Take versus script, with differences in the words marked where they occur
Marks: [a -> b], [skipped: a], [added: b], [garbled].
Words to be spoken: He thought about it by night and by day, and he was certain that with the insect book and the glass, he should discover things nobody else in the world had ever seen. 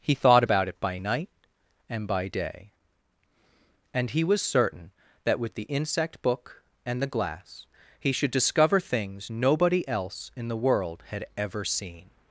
He thought about it by night and by day, and he was certain that with the insect book and the glass, he should discover things nobody else in the world had ever seen.